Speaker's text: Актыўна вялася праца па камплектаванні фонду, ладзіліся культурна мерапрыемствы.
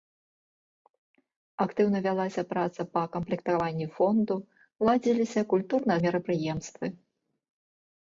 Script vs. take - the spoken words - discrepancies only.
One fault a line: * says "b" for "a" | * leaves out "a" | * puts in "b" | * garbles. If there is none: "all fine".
all fine